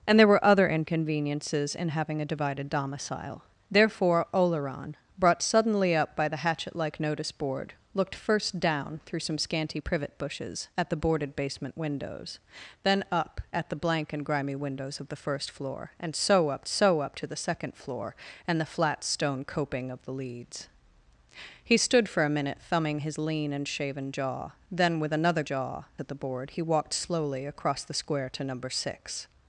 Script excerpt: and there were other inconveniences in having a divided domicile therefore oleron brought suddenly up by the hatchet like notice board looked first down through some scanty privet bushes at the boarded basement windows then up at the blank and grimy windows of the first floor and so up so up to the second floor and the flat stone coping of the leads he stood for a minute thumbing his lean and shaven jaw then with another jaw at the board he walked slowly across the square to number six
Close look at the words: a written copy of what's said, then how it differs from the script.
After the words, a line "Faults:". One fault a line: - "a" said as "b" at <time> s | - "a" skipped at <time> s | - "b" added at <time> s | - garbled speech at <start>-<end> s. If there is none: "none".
and there were other inconveniences in having a divided domicile therefore oleron brought suddenly up by the hatchet like notice board looked first down through some scanty privet bushes at the boarded basement windows then up at the blank and grimy windows of the first floor and so up so up to the second floor and the flat stone coping of the leads he stood for a minute thumbing his lean and shaven jaw then with another jaw at the board he walked slowly across the square to number six
Faults:
none